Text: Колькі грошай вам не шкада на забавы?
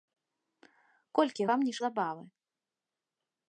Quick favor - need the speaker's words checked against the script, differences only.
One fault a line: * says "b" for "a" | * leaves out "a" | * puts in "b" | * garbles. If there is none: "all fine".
* leaves out "грошай"
* leaves out "шкада на"